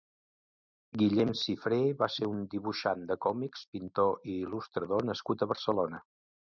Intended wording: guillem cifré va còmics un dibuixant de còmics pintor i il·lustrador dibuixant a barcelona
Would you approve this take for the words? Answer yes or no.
no